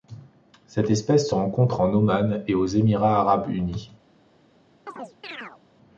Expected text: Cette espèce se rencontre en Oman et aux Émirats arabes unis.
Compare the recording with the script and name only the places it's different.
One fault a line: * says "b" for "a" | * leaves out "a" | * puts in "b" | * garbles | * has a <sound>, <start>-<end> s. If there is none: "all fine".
* has a chirp, 4.9-5.6 s